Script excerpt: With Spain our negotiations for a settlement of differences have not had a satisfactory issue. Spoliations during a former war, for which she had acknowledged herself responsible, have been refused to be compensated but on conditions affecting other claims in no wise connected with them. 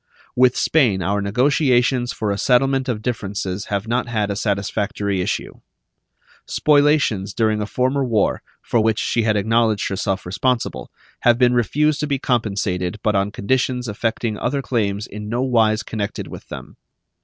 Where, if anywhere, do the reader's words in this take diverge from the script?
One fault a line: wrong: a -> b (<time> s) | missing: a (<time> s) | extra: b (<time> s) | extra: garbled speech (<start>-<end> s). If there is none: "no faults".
no faults